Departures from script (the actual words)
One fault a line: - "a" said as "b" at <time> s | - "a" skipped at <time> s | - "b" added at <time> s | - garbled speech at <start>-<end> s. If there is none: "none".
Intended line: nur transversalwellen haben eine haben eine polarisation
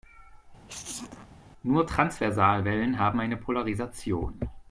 - "haben eine" skipped at 3.4 s